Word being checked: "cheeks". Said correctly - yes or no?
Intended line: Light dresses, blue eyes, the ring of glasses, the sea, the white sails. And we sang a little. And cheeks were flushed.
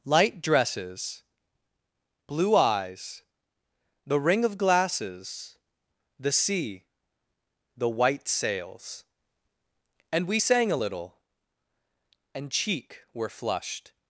no